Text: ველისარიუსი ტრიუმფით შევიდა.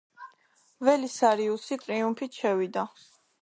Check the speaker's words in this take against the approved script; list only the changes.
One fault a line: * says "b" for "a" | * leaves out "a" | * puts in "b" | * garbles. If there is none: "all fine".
all fine